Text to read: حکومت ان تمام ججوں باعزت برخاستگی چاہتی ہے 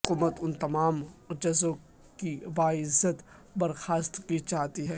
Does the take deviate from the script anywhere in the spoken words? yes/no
yes